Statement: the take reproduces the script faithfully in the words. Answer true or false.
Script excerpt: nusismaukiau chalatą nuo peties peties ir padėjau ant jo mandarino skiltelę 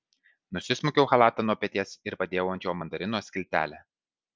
false